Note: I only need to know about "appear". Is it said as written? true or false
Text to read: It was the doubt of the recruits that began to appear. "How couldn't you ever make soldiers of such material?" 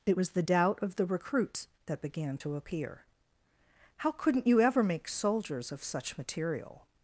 true